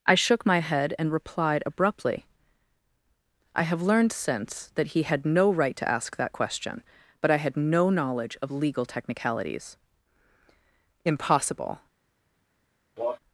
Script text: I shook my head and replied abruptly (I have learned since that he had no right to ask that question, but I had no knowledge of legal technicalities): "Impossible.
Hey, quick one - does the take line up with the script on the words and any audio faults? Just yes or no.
no